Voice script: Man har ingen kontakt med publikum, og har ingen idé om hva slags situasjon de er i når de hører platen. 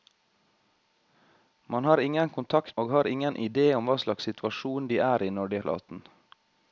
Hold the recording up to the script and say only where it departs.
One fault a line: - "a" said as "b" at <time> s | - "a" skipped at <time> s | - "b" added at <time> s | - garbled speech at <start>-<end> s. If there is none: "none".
- "med publikum" skipped at 2.8 s
- "hører" skipped at 5.6 s